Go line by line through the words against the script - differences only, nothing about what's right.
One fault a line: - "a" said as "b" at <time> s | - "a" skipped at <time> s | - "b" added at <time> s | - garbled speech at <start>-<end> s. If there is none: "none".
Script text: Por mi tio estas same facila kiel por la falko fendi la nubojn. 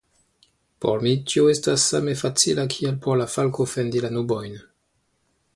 none